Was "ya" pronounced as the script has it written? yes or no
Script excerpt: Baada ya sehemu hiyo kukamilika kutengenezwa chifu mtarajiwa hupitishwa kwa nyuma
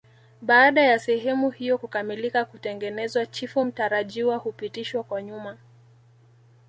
yes